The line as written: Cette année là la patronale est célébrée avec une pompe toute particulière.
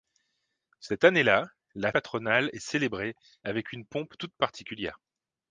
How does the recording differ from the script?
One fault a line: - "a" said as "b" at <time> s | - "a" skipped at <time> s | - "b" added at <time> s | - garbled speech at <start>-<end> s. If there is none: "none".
none